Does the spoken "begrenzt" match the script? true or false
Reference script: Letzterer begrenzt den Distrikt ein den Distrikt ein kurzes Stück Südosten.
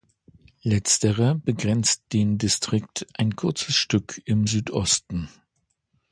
true